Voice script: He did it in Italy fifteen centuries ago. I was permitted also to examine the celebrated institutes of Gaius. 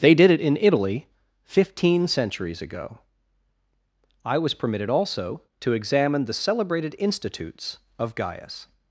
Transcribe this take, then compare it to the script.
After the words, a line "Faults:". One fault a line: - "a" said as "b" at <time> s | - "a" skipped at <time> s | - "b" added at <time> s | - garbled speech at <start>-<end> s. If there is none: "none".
They did it in Italy fifteen centuries ago. I was permitted also to examine the celebrated institutes of Gaius.
Faults:
- "He" said as "They" at 0.0 s